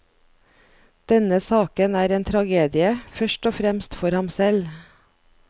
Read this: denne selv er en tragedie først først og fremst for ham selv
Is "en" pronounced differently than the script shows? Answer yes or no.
no